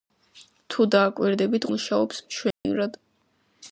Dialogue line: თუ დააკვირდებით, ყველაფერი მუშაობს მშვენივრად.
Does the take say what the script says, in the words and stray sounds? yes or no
no